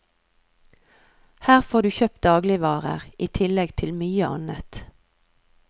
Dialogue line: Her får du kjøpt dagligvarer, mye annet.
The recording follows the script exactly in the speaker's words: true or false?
false